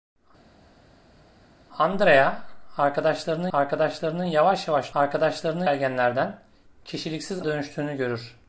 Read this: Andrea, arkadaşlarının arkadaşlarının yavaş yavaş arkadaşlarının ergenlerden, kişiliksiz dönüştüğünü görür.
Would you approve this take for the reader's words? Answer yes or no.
yes